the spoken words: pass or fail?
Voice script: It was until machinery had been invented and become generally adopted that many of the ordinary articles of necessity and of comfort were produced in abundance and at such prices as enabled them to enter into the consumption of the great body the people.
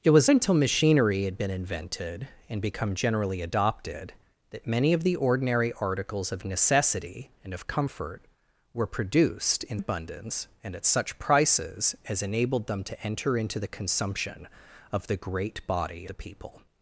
pass